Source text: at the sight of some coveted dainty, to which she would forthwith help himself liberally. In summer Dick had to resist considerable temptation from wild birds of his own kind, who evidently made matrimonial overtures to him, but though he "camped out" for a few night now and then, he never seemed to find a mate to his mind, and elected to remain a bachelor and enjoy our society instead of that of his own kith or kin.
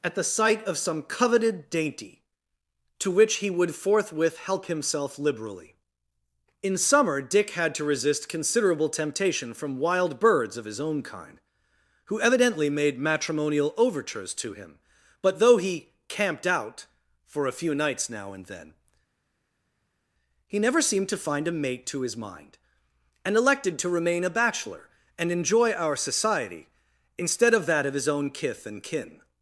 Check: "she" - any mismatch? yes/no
yes